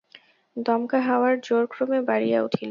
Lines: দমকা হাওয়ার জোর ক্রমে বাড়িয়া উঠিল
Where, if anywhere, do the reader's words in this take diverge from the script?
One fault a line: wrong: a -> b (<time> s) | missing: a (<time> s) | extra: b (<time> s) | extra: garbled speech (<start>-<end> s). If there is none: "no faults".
no faults